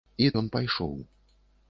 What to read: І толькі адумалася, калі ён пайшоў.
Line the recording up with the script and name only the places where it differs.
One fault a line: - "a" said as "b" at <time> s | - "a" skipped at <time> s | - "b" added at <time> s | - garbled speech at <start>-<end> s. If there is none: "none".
- "толькі адумалася калі" skipped at 0.3 s